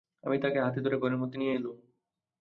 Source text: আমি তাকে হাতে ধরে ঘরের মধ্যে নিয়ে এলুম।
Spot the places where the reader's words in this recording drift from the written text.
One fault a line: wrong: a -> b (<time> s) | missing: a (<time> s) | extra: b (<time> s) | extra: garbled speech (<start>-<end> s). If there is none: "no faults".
no faults